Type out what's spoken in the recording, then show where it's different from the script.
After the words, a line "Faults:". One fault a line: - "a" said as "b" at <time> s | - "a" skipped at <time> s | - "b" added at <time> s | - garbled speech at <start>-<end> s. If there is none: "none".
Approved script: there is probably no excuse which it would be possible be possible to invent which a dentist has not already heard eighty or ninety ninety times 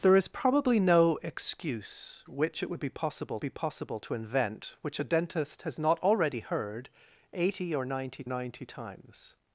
there is probably no excuse which it would be possible be possible to invent which a dentist has not already heard eighty or ninety ninety times
Faults:
none